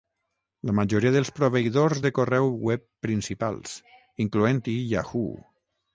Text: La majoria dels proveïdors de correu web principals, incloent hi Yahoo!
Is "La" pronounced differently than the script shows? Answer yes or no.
no